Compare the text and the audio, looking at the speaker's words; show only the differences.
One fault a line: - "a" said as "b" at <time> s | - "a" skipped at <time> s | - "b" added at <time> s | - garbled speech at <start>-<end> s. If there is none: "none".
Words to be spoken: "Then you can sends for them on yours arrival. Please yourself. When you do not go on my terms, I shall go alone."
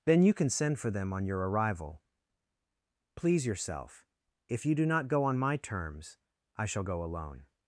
- "sends" said as "send" at 0.5 s
- "yours" said as "your" at 1.2 s
- "When" said as "If" at 4.5 s